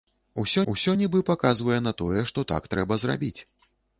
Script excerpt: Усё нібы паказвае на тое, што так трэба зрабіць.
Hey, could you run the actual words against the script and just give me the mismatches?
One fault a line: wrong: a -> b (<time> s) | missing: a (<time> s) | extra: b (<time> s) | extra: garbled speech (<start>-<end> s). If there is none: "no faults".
extra: усё (0.7 s)